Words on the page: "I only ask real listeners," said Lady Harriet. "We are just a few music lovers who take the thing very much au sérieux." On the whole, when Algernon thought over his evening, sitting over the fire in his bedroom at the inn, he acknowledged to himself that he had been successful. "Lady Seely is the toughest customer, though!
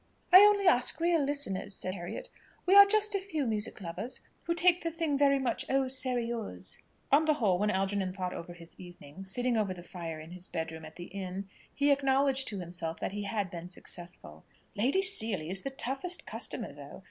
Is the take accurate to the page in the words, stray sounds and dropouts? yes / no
no